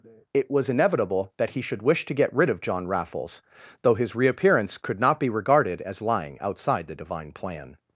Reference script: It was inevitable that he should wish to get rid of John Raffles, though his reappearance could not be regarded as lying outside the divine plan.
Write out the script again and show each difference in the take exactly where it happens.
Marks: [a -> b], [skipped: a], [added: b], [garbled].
It was inevitable that he should wish to get rid of John Raffles, though his reappearance could not be regarded as lying outside the divine plan.